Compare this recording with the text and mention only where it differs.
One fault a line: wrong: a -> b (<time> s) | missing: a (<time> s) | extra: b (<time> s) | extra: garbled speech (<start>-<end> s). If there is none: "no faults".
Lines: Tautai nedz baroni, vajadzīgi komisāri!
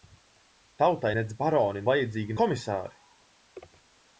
no faults